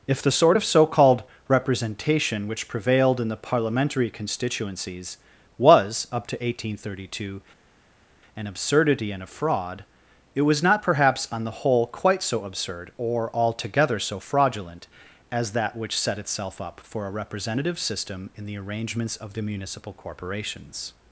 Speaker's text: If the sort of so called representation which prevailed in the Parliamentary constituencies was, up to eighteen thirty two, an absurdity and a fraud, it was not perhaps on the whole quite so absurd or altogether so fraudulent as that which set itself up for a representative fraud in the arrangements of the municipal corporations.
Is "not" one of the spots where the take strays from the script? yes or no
no